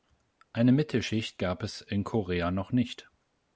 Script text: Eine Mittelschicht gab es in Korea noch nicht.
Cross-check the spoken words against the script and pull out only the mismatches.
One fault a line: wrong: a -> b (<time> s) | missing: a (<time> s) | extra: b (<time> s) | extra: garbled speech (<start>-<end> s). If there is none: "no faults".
no faults